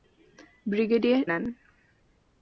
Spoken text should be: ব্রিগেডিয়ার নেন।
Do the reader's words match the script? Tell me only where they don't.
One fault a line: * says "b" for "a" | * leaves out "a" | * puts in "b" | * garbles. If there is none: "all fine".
all fine